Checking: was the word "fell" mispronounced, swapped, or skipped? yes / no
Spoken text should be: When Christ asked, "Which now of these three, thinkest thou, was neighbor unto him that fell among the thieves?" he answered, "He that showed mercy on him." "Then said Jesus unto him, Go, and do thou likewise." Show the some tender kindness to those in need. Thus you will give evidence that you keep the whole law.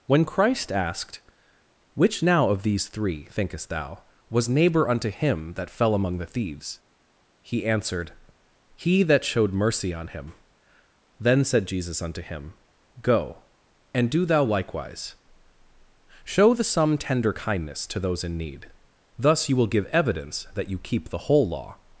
no